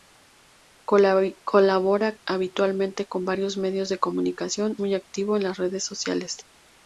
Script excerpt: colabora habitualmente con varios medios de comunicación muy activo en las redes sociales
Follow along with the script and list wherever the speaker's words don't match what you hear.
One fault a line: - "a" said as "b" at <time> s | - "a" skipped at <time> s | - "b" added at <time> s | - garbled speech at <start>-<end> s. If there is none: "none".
none